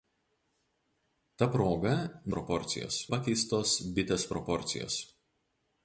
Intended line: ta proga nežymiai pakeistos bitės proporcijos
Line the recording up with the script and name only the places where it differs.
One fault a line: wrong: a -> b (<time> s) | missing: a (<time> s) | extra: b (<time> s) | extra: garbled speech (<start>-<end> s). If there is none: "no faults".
wrong: nežymiai -> proporcijos (2.3 s)